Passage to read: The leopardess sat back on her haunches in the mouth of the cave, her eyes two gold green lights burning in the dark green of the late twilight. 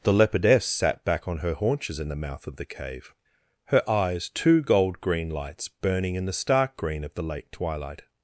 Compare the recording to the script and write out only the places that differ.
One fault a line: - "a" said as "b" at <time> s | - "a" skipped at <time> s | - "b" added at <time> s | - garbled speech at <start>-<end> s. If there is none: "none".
- "dark" said as "stark" at 6.3 s